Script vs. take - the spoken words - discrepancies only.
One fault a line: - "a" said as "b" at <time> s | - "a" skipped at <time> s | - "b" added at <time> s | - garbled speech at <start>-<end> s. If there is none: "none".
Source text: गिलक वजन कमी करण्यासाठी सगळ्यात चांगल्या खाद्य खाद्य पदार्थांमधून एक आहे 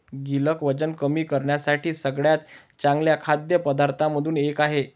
- "खाद्य" skipped at 3.6 s